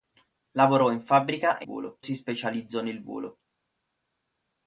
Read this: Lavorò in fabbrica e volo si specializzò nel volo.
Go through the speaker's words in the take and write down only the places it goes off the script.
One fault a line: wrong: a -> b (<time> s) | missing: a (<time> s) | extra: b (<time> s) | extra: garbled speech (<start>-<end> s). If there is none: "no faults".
no faults